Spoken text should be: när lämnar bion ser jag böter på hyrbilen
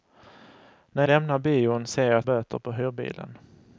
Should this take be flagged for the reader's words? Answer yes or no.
no